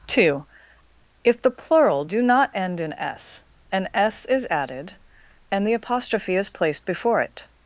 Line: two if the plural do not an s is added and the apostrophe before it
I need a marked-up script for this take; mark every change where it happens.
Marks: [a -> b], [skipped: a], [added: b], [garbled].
two if the plural do not [added: end in s] an s is added and the apostrophe [added: is placed] before it